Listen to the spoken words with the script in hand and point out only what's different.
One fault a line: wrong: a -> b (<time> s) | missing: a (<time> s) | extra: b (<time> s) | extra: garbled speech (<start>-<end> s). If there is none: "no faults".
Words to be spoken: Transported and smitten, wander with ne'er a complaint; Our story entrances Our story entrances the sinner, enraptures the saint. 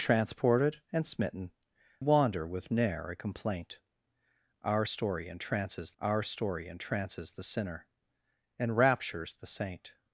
no faults